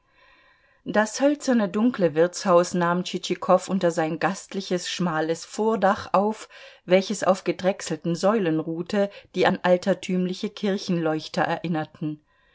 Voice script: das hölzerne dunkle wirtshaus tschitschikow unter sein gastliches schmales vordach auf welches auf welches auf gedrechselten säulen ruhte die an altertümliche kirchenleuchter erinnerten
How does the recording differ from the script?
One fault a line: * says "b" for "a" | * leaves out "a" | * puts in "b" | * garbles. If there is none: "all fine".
* puts in "nahm"
* leaves out "welches auf"